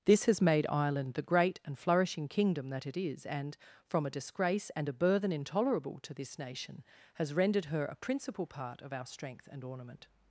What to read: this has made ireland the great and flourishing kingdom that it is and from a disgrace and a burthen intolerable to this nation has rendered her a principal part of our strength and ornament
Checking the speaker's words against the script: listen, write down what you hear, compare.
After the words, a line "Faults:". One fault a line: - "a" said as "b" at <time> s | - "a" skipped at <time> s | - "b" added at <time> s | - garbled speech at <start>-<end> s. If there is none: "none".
this has made ireland the great and flourishing kingdom that it is and from a disgrace and a burthen intolerable to this nation has rendered her a principal part of our strength and ornament
Faults:
none